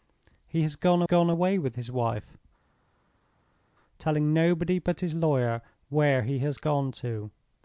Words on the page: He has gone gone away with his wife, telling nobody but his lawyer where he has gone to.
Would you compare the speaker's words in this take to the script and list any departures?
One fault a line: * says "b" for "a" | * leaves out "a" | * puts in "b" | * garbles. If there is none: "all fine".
all fine